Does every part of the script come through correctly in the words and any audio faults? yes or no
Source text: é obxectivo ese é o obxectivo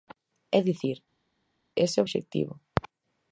no